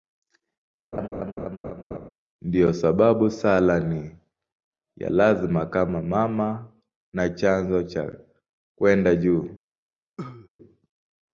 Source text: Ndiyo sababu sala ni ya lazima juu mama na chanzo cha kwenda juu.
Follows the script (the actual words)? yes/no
no